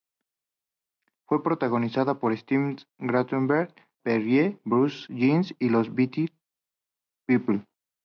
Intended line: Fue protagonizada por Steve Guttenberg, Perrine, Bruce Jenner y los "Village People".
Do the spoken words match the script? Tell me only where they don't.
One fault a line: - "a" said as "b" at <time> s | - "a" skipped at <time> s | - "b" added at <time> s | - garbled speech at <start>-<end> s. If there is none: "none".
none